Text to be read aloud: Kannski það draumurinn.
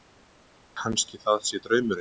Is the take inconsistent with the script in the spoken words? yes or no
yes